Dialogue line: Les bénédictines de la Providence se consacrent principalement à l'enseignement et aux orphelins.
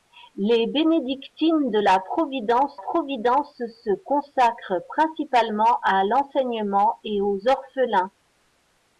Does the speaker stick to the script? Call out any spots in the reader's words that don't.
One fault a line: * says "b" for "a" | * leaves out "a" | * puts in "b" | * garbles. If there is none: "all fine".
* puts in "Providence"